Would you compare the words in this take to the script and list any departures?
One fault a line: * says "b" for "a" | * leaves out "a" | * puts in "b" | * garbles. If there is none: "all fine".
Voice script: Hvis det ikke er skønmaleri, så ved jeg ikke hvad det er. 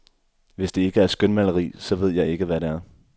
all fine